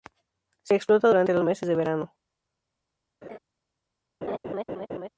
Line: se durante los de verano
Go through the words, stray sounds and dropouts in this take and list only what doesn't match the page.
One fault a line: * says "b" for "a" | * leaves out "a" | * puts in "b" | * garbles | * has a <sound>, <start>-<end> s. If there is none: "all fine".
* puts in "explota"
* puts in "meses"
* has a laugh, 3.2-3.4 s
* has a laugh, 4.2-5.1 s